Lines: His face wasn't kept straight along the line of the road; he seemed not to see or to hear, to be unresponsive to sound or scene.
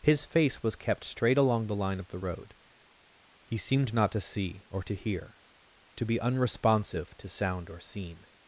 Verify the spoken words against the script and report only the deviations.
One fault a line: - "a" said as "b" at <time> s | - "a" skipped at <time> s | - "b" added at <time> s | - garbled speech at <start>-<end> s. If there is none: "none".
- "wasn't" said as "was" at 0.6 s